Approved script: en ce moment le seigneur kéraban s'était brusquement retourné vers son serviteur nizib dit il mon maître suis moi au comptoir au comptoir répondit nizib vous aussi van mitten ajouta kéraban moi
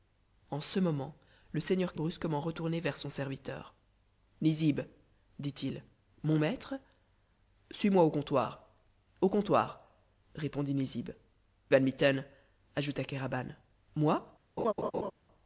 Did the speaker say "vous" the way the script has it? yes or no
no